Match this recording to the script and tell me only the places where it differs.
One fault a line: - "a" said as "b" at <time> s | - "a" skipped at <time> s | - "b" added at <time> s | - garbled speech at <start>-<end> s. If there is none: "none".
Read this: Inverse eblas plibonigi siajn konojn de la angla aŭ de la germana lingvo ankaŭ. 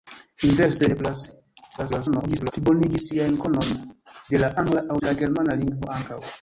- garbled speech at 1.8-2.5 s
- "de" skipped at 5.0 s